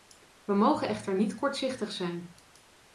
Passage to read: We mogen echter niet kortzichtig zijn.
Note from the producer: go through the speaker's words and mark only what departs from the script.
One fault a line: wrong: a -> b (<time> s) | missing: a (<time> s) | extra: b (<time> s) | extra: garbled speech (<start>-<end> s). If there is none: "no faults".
no faults